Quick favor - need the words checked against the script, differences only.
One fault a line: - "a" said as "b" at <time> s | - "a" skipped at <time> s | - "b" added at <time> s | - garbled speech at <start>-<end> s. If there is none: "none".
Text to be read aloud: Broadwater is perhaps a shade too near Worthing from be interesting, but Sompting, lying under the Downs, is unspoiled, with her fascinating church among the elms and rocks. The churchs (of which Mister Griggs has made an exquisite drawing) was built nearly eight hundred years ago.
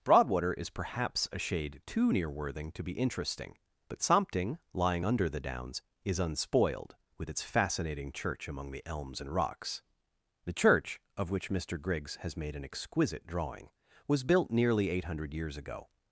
- "from" said as "to" at 2.7 s
- "her" said as "its" at 7.3 s
- "churchs" said as "church" at 10.5 s